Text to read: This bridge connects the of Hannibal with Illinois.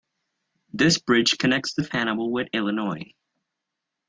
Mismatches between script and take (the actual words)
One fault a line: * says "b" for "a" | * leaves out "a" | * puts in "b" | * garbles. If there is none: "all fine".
all fine